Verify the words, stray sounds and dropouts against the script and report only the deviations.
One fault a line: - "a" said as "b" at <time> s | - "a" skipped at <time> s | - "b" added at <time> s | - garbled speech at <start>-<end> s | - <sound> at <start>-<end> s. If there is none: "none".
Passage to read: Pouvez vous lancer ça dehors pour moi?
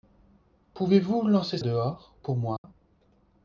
- "ça" skipped at 1.6 s
- dropout at 2.6-2.6 s